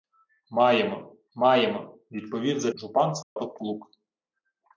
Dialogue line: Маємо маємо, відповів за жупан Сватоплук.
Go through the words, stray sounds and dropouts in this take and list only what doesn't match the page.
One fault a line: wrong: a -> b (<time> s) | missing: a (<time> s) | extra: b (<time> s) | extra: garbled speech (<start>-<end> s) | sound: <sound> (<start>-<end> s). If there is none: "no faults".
sound: dropout (3.2-3.4 s)